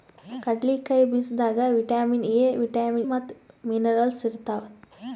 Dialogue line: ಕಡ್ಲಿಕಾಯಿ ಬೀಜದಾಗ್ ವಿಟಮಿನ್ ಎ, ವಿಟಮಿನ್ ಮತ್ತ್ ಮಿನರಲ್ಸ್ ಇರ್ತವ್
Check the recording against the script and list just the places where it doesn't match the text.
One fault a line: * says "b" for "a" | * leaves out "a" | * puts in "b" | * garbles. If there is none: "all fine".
all fine